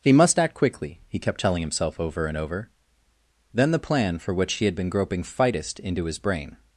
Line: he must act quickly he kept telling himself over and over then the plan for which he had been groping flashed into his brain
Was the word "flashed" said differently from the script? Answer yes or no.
yes